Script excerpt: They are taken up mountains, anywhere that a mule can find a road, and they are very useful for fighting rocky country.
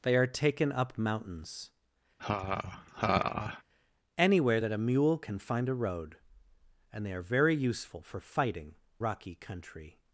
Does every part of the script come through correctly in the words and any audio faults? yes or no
no